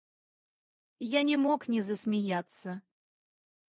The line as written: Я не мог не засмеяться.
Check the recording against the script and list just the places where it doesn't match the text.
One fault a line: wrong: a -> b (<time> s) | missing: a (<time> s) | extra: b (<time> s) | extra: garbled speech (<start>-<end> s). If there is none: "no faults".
no faults